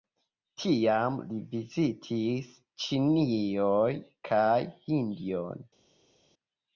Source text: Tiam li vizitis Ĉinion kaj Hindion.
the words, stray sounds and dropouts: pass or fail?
pass